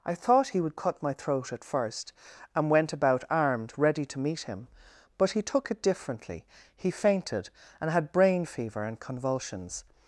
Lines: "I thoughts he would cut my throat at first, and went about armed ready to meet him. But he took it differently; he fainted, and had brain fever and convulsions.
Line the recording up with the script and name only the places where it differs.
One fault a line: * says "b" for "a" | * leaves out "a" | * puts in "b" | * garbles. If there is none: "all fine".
* says "thought" for "thoughts"